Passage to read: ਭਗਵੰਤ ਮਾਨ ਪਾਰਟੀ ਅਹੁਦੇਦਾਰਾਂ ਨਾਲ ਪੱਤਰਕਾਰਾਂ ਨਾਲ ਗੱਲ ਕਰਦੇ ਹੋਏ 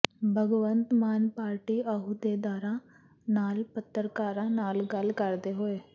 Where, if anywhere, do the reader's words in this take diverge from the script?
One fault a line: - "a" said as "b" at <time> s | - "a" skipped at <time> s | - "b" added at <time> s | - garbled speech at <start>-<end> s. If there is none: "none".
none